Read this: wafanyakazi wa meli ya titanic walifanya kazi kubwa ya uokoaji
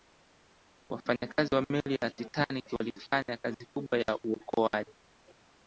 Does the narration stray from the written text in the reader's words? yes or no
no